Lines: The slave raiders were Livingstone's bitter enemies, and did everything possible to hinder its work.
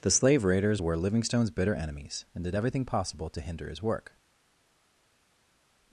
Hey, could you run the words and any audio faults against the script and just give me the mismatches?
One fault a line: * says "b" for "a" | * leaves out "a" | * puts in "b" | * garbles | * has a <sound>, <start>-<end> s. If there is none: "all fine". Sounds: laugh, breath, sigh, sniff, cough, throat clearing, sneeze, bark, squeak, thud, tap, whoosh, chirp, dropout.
* says "his" for "its"